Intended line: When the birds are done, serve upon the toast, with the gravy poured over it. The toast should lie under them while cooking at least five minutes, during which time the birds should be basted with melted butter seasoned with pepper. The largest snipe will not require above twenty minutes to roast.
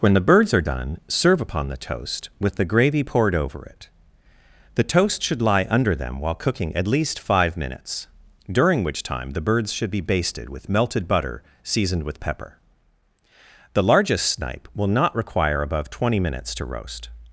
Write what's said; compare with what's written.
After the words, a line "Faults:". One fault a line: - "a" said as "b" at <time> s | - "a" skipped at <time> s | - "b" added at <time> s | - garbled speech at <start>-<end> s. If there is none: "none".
When the birds are done, serve upon the toast, with the gravy poured over it. The toast should lie under them while cooking at least five minutes, during which time the birds should be basted with melted butter seasoned with pepper. The largest snipe will not require above twenty minutes to roast.
Faults:
none